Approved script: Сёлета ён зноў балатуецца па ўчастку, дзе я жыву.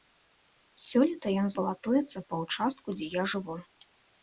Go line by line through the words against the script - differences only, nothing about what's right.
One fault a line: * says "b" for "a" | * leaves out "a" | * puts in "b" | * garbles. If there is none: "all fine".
* leaves out "зноў"